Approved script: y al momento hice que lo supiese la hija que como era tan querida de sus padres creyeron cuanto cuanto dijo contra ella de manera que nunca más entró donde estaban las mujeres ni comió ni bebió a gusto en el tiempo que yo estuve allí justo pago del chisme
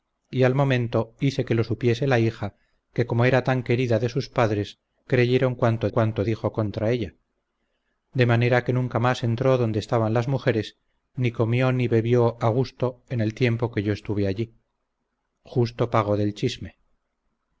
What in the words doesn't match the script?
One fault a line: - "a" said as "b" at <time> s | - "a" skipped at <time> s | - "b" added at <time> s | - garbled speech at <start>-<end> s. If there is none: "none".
none